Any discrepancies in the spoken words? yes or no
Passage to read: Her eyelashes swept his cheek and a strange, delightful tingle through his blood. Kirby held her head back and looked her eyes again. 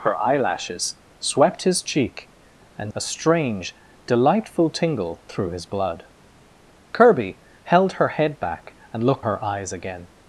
no